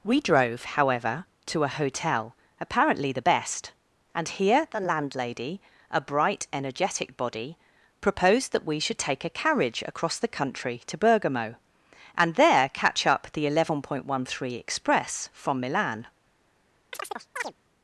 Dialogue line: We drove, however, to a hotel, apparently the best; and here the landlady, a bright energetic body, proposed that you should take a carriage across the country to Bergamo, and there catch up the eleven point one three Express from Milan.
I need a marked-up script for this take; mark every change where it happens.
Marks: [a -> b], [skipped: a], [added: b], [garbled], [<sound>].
We drove, however, to a hotel, apparently the best; and here the landlady, a bright energetic body, proposed that [you -> we] should take a carriage across the country to Bergamo, and there catch up the eleven point one three Express from Milan. [chirp]